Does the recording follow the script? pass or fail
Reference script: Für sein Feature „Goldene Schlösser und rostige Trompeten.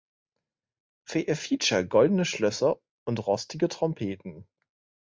fail